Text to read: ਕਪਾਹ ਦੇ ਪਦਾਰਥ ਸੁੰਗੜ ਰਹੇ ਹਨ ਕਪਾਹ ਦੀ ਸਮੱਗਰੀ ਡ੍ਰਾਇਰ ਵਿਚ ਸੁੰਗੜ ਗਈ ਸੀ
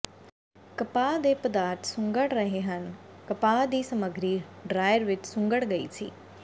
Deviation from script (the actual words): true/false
false